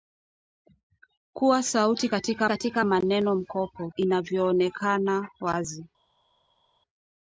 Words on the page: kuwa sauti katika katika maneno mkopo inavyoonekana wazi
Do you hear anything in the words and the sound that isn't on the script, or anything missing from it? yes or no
no